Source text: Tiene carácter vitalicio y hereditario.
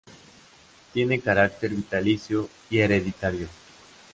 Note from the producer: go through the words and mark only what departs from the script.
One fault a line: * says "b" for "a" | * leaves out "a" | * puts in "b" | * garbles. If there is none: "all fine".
all fine